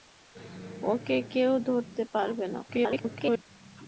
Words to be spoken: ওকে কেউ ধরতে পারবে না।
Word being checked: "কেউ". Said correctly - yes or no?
yes